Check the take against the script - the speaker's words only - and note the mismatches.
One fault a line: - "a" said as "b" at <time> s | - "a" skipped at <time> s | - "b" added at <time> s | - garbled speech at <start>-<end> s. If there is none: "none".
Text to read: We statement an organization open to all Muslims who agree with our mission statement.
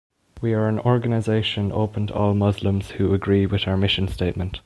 - "statement" said as "are" at 0.5 s